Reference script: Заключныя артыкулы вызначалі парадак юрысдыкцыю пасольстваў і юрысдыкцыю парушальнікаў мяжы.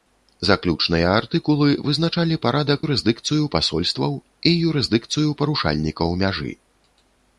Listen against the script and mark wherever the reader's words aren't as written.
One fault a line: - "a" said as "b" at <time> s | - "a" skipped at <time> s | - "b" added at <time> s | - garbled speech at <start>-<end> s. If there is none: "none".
none